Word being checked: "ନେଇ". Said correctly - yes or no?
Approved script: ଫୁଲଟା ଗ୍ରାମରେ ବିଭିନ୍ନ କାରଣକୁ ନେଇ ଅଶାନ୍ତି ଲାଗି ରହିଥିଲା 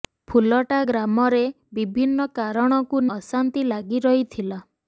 no